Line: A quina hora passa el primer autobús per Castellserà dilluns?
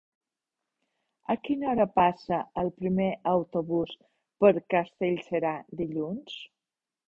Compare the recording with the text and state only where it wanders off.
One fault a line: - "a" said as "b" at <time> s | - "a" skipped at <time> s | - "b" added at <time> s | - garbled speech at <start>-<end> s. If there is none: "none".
none